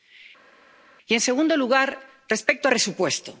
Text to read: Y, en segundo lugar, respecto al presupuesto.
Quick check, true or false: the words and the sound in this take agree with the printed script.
false